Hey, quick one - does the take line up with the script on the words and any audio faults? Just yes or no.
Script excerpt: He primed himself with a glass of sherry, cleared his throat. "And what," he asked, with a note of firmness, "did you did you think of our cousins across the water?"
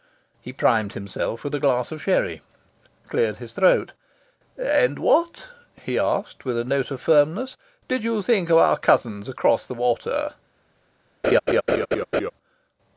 no